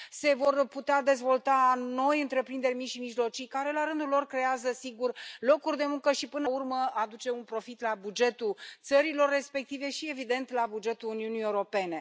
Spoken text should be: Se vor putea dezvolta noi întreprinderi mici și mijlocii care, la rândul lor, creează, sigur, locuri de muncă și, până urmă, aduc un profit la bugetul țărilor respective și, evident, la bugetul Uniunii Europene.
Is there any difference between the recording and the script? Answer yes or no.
no